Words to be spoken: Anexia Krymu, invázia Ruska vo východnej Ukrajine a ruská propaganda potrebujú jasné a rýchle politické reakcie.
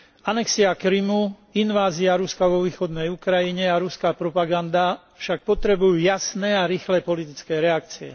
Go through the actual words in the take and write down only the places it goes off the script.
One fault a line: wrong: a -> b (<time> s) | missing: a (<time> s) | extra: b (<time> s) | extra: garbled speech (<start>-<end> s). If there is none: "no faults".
extra: však (5.2 s)